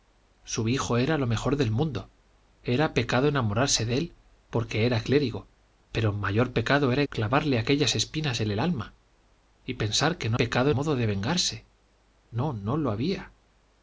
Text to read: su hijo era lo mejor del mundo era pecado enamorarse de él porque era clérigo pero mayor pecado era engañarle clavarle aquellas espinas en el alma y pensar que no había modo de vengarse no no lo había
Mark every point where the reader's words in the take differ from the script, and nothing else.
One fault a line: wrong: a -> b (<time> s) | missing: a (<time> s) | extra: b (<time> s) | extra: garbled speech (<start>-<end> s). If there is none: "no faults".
missing: engañarle (7.0 s)
wrong: había -> pecado (10.4 s)